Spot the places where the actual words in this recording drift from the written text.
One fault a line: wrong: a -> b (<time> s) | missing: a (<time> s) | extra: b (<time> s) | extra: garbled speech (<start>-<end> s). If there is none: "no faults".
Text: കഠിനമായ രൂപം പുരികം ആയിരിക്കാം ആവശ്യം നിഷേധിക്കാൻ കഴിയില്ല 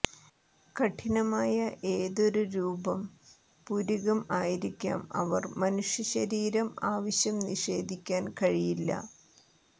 extra: ഏതൊരു (1.9 s)
extra: അവർ മനുഷ്യ ശരീരം (5.1 s)